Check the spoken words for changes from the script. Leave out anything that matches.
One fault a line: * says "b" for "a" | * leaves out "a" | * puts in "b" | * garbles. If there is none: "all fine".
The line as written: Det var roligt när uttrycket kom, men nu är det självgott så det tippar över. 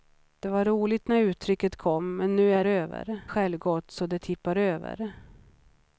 * says "över" for "det"